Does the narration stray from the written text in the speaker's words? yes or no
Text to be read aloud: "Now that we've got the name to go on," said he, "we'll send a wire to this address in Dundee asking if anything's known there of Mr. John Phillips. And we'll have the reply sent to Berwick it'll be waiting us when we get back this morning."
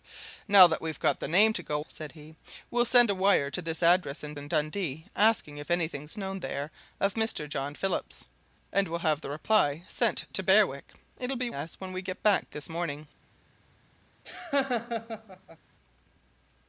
yes